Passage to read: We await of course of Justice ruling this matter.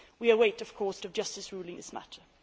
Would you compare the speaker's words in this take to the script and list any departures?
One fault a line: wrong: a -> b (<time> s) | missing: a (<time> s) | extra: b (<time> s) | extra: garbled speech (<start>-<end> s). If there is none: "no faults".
no faults